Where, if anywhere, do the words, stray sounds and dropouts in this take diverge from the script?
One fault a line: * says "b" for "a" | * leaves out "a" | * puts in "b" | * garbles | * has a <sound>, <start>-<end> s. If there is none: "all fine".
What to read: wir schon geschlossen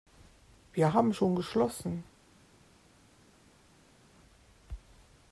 * puts in "haben"